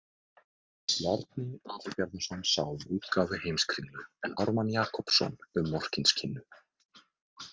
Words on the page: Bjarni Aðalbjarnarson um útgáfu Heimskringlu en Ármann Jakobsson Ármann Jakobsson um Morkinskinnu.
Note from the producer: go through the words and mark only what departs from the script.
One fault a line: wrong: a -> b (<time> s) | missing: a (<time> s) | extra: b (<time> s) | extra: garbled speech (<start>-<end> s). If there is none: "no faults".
extra: sá (2.5 s)
missing: Ármann Jakobsson (5.4 s)